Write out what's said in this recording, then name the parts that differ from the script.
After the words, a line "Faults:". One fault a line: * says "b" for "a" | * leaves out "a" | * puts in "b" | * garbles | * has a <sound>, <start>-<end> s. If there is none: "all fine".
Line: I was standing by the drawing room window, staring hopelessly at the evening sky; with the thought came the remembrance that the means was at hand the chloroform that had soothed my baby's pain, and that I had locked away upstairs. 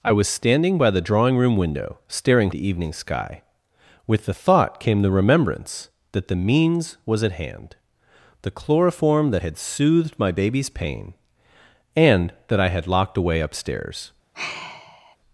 I was standing by the drawing room window, staring the evening sky; with the thought came the remembrance that the means was at hand the chloroform that had soothed my baby's pain, and that I had locked away upstairs.
Faults:
* leaves out "hopelessly at"
* has a sigh, 14.3-15.2 s